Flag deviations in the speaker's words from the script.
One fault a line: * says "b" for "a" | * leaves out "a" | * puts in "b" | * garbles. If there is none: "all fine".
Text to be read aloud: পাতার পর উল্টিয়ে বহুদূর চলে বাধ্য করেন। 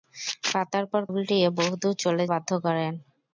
all fine